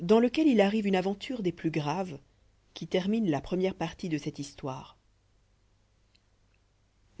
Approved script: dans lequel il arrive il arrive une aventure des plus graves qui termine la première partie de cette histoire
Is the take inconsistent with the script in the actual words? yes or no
yes